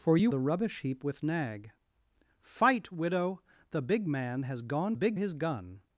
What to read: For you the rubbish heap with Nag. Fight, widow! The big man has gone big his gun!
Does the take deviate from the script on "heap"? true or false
false